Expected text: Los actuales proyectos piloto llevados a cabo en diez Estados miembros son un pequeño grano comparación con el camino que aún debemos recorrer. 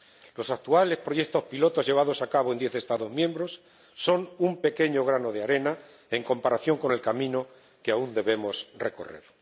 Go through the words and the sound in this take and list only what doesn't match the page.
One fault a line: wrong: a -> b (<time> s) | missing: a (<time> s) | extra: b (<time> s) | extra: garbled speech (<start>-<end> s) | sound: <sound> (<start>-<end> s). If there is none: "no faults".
extra: de arena en (5.3 s)